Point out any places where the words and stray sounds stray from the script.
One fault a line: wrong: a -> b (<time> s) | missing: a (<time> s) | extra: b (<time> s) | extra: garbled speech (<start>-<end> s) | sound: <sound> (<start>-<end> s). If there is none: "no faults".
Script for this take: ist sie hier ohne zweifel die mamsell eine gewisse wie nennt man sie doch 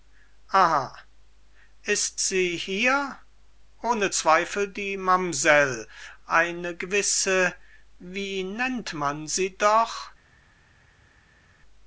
no faults